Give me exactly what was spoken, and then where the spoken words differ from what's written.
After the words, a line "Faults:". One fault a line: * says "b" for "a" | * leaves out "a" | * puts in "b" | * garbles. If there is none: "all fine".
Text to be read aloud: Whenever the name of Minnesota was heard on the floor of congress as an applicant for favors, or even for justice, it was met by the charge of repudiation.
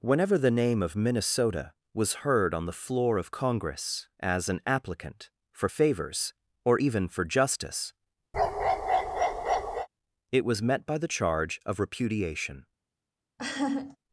Whenever the name of Minnesota was heard on the floor of congress as an applicant for favors, or even for justice, it was met by the charge of repudiation.
Faults:
all fine